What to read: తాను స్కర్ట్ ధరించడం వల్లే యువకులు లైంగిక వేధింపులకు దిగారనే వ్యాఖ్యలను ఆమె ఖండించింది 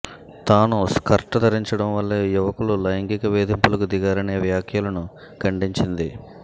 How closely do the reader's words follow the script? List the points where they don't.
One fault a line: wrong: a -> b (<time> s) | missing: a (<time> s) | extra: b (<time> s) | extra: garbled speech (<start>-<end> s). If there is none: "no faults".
missing: ఆమె (5.0 s)